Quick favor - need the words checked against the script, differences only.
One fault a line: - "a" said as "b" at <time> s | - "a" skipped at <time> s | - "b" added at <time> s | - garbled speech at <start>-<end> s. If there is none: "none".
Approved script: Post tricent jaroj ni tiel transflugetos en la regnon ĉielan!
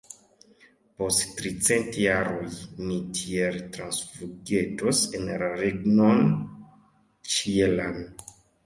none